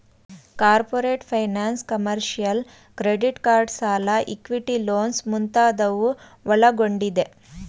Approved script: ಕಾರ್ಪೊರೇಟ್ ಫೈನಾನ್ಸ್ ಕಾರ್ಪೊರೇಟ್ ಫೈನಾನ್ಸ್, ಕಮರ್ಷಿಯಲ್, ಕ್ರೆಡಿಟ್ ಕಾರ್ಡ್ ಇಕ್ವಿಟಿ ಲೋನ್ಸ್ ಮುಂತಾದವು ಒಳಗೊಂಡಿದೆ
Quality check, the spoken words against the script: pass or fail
fail